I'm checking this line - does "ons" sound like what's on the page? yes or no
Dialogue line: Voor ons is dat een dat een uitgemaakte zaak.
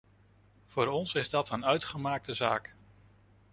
yes